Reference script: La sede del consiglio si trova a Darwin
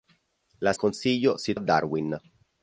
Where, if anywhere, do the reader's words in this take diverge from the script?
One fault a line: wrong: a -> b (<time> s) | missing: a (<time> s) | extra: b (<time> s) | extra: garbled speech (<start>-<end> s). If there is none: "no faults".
missing: sede del (0.7 s)
missing: trova (1.5 s)